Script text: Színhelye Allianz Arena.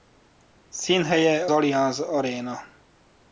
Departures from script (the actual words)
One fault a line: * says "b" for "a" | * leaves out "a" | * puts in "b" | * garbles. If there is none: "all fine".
all fine